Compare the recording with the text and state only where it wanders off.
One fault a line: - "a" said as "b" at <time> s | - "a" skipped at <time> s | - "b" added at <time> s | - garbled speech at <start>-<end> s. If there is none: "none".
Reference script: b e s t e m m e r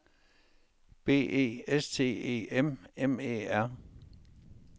none